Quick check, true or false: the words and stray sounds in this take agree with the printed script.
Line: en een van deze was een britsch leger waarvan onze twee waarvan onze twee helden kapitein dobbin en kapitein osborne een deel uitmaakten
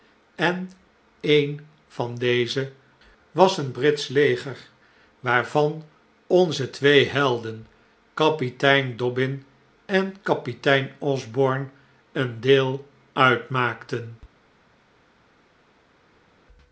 false